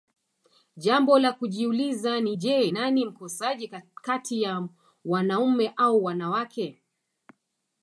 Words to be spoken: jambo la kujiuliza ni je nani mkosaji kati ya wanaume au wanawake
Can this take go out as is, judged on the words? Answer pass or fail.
pass